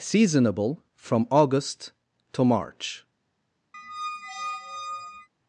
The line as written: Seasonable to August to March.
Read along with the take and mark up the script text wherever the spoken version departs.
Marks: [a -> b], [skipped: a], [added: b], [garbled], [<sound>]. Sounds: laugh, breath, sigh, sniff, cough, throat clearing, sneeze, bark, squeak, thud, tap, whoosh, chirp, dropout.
Seasonable [to -> from] August to March. [squeak]